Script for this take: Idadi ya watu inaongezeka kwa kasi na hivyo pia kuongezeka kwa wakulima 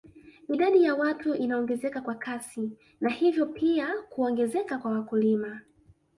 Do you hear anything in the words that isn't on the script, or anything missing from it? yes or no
no